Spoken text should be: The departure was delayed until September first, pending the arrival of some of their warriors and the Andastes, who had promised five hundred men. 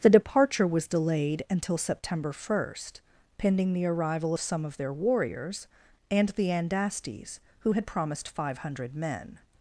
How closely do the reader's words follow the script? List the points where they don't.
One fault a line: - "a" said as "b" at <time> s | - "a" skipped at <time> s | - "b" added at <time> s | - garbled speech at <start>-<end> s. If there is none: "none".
none